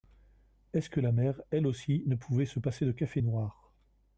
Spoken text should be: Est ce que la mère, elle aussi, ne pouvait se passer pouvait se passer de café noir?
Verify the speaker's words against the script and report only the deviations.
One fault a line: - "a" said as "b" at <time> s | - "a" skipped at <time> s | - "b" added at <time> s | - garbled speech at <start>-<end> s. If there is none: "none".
- "pouvait se passer" skipped at 2.9 s